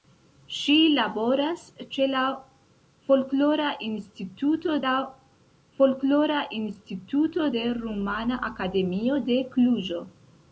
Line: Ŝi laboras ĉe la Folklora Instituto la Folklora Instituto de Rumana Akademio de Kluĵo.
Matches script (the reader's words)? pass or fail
pass